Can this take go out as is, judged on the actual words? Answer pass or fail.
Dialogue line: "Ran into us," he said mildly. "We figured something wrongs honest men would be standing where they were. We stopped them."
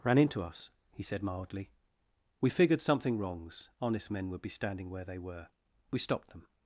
pass